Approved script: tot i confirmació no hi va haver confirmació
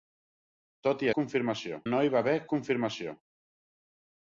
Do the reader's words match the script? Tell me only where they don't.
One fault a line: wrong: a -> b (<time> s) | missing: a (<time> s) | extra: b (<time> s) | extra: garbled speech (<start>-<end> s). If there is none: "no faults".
no faults